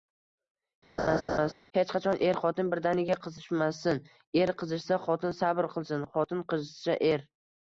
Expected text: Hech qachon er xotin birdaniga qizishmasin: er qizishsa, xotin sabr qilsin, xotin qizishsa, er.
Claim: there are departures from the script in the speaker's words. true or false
false